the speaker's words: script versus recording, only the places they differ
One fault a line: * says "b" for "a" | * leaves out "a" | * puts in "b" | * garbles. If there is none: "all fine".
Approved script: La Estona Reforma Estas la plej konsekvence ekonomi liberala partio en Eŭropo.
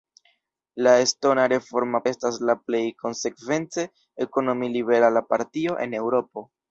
all fine